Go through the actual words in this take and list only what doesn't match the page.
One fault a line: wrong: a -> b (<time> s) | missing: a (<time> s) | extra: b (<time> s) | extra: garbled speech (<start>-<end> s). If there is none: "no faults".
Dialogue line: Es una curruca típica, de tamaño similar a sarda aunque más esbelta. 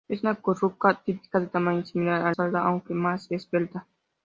no faults